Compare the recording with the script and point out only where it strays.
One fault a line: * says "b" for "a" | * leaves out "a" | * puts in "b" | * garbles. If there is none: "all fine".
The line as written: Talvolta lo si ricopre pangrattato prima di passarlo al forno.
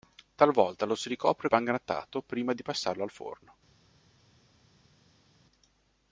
all fine